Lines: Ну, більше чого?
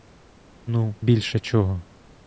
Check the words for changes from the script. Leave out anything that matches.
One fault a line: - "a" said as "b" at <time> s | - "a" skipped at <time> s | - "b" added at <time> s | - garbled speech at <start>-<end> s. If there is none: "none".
none